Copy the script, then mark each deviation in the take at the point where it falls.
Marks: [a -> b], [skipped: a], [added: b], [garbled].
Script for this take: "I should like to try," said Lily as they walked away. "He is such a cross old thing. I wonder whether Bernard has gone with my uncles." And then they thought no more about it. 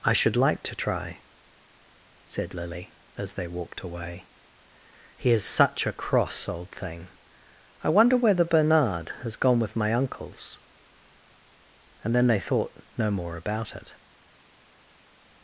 "I should like to try," said Lily as they walked away. "He is such a cross old thing. I wonder whether Bernard has gone with my uncles." And then they thought no more about it.